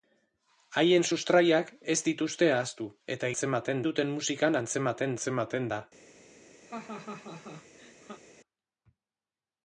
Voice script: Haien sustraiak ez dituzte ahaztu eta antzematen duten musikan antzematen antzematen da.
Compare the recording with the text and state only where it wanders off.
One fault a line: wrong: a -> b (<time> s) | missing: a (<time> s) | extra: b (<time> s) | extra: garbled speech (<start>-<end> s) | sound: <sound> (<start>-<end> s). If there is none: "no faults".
sound: laugh (6.7-8.2 s)